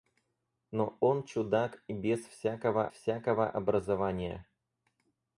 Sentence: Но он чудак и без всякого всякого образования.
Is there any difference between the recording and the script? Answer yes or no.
no